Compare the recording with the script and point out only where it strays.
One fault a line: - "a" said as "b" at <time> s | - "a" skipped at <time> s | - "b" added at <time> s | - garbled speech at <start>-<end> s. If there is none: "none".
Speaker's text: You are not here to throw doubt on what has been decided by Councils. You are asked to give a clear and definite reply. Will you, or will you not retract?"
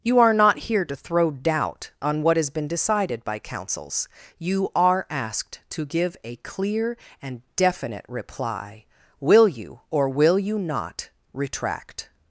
none